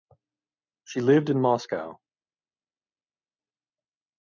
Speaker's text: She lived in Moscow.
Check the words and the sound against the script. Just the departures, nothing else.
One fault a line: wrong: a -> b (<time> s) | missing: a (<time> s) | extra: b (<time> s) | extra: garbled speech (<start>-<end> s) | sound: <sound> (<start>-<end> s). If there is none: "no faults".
no faults